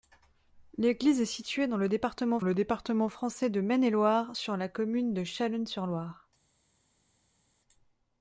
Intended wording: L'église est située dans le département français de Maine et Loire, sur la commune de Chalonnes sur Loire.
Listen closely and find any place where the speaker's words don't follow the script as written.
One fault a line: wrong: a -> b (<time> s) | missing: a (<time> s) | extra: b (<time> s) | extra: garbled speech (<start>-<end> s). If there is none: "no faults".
extra: le département (2.4 s)